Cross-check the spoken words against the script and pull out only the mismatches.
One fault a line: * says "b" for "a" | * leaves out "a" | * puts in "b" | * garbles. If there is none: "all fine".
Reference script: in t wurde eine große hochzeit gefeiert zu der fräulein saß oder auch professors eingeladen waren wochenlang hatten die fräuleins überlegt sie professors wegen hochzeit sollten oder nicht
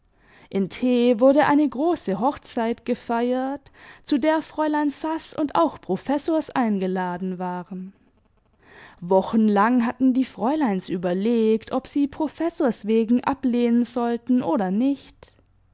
* says "und" for "oder"
* puts in "ob"
* says "ablehnen" for "hochzeit"